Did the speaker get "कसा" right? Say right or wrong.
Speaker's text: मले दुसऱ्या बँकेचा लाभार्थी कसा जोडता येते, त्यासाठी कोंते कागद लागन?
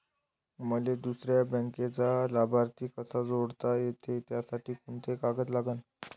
right